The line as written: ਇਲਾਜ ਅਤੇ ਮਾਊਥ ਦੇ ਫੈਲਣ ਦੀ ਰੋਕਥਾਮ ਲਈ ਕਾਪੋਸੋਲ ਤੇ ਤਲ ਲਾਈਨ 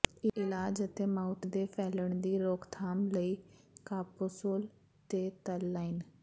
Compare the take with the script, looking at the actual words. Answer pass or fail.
pass